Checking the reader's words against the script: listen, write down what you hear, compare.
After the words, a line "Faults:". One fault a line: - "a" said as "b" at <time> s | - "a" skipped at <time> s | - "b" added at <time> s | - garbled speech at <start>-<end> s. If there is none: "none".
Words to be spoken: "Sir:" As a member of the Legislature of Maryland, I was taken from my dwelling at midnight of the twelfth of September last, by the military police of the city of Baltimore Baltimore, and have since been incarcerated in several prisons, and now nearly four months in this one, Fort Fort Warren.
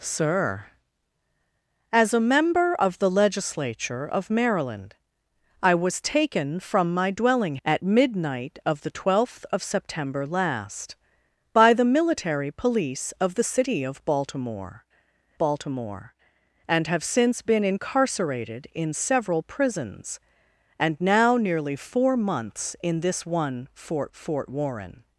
"Sir:" As a member of the Legislature of Maryland, I was taken from my dwelling at midnight of the twelfth of September last, by the military police of the city of Baltimore Baltimore, and have since been incarcerated in several prisons, and now nearly four months in this one, Fort Fort Warren.
Faults:
none